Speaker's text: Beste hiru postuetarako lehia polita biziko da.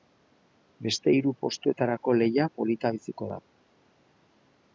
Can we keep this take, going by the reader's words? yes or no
yes